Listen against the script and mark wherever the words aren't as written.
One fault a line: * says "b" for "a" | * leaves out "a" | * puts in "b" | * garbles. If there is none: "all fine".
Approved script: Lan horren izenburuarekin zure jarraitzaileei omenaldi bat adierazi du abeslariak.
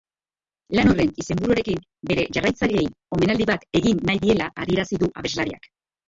* says "bere" for "zure"
* puts in "egin nahi diela"